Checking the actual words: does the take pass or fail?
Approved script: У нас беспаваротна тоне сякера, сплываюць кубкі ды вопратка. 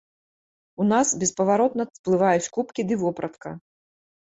fail